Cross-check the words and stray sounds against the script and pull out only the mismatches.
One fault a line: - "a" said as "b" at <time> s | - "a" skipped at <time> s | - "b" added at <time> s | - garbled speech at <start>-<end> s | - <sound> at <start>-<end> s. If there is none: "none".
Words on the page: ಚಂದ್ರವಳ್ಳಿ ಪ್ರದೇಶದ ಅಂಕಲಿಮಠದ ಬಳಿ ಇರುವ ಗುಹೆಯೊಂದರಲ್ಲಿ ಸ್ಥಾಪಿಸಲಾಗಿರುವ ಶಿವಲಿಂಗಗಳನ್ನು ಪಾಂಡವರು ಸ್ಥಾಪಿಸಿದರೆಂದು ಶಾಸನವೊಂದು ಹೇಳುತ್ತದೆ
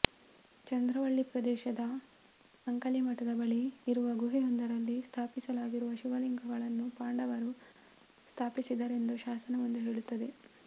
none